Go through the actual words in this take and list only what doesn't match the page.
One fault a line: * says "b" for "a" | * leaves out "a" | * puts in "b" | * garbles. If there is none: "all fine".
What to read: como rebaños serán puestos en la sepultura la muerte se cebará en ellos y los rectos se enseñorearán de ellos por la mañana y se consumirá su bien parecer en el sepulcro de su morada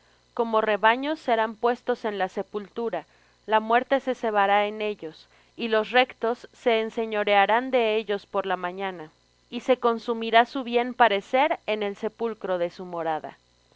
all fine